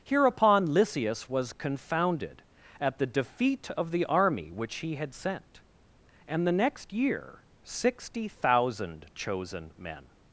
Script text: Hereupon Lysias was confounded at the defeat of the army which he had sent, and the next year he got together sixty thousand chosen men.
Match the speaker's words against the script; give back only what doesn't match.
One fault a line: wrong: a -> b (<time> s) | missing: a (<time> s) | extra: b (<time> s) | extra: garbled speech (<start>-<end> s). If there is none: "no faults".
missing: he got together (7.5 s)